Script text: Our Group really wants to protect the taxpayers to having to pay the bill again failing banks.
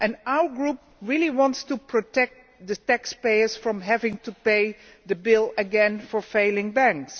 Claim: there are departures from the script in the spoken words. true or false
true